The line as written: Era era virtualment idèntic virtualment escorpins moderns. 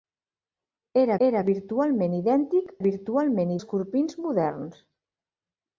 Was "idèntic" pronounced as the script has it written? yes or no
yes